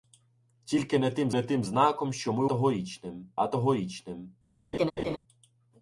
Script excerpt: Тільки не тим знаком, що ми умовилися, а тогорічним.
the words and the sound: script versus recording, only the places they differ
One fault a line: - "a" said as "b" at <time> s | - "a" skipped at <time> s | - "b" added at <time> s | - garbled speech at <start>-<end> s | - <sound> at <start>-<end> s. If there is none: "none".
- "не тим" added at 1.3 s
- "умовилися" said as "тогорічним" at 2.4 s
- laugh at 4.7-5.2 s